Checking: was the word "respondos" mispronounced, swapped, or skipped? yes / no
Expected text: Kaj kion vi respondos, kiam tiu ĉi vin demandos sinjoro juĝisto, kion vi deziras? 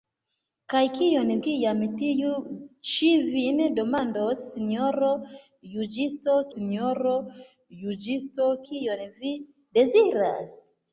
yes